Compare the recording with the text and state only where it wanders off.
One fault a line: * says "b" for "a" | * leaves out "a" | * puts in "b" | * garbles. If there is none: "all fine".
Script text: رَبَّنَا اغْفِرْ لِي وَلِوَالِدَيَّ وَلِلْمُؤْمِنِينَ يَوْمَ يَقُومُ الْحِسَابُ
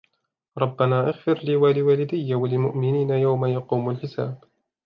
all fine